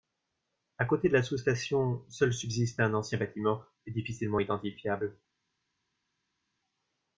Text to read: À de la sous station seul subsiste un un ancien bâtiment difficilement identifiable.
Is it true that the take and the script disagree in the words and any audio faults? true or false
true